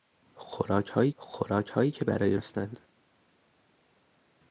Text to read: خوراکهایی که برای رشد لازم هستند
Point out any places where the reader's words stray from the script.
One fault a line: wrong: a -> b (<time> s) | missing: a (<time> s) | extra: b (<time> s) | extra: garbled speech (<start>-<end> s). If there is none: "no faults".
extra: خوراکهایی (1.2 s)
missing: رشد لازم (2.4 s)